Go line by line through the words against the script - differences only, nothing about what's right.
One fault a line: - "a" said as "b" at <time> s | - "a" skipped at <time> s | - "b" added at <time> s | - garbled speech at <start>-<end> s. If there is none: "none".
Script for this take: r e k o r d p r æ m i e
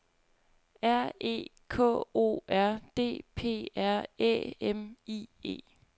none